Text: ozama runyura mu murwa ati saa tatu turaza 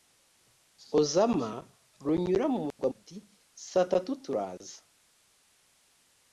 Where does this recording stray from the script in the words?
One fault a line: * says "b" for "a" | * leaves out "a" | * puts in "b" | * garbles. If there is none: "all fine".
all fine